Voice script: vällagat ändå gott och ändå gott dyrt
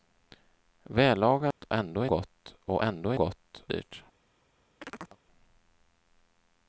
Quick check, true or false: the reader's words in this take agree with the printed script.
true